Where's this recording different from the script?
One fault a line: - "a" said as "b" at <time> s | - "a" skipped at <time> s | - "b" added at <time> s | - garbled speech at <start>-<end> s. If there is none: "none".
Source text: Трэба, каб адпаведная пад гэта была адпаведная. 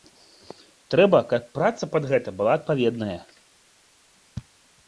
- "адпаведная" said as "праца" at 1.6 s